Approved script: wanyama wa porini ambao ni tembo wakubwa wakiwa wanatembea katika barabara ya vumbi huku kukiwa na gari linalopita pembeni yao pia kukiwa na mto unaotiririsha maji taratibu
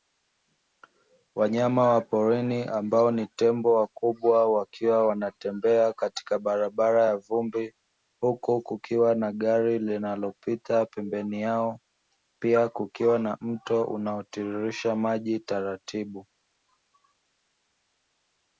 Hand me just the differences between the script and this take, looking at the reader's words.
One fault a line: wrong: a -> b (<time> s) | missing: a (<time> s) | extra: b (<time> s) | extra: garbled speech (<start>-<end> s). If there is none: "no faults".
no faults